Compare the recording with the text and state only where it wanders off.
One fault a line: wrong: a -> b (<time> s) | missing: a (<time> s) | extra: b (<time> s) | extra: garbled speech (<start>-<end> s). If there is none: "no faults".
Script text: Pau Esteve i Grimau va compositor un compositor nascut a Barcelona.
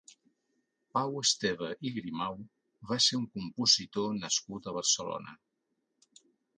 wrong: compositor -> ser (3.1 s)